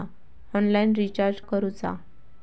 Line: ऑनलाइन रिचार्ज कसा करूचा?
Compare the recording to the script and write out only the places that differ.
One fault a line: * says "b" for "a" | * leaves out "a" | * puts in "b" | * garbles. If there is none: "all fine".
* leaves out "कसा"